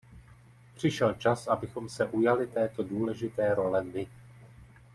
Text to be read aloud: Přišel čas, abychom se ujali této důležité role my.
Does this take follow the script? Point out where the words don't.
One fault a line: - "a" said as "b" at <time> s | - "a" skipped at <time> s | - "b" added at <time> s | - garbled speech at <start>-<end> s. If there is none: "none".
none